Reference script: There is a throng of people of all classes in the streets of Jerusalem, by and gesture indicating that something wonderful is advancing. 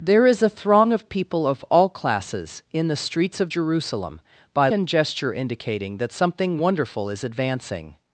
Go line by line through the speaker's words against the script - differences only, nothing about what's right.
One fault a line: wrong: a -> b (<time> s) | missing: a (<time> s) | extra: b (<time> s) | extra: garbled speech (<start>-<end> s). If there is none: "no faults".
no faults